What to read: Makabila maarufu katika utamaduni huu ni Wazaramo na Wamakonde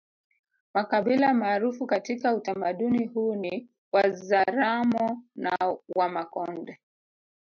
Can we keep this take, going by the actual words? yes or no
yes